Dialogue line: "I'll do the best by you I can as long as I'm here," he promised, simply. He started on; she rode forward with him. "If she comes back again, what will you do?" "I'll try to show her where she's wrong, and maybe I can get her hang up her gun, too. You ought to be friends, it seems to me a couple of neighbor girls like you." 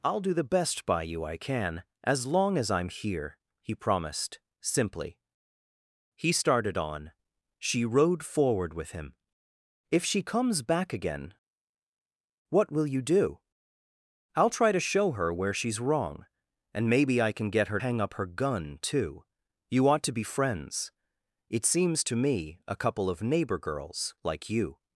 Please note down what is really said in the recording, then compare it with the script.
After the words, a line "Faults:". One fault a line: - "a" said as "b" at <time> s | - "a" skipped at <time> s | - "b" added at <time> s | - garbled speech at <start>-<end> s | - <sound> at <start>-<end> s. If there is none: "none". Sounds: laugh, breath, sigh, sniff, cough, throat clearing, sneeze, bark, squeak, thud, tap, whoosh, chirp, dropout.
"I'll do the best by you I can as long as I'm here," he promised, simply. He started on; she rode forward with him. "If she comes back again, what will you do?" "I'll try to show her where she's wrong, and maybe I can get her hang up her gun, too. You ought to be friends, it seems to me a couple of neighbor girls like you."
Faults:
none